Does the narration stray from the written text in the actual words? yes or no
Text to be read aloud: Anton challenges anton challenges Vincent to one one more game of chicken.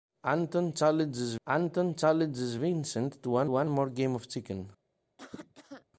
no